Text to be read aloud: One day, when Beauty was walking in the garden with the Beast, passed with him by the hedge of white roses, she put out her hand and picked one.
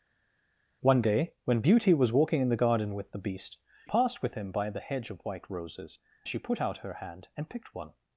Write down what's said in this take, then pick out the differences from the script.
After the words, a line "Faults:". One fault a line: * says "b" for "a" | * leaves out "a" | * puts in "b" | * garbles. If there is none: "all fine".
One day, when Beauty was walking in the garden with the Beast, passed with him by the hedge of white roses, she put out her hand and picked one.
Faults:
all fine